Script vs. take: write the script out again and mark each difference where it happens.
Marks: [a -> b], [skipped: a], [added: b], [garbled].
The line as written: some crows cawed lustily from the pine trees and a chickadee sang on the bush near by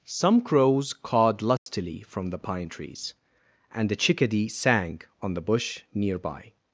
some crows cawed lustily from the pine trees and a chickadee sang on the bush near by